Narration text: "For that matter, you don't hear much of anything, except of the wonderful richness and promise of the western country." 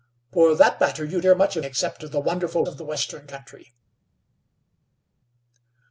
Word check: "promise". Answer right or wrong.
wrong